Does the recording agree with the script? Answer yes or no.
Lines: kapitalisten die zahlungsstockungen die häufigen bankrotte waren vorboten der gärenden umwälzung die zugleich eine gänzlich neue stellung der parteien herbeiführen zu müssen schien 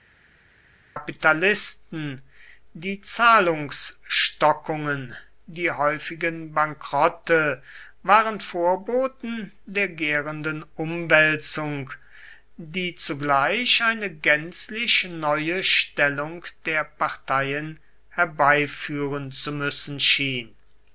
yes